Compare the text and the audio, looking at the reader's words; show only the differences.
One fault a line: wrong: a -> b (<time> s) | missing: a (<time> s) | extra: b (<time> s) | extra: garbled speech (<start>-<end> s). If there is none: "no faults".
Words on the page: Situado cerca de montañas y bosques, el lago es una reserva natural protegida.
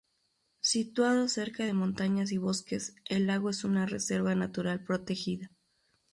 no faults